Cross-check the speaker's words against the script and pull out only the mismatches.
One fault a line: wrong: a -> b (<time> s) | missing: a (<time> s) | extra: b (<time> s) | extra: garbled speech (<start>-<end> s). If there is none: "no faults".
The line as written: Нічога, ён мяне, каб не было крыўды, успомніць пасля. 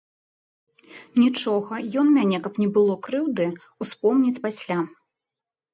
no faults